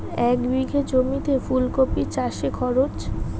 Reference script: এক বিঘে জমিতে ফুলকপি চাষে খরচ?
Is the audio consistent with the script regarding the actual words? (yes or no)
yes